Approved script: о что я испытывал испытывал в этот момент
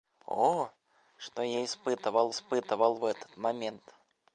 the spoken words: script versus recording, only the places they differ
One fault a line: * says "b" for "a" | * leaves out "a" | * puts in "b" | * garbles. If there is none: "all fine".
all fine